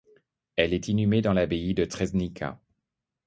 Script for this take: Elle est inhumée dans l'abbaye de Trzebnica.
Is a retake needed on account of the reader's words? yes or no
no